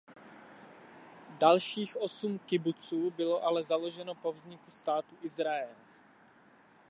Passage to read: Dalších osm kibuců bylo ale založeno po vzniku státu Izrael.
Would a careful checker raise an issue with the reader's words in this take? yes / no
no